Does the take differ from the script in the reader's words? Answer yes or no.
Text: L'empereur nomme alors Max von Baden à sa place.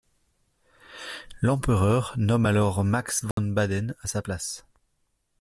no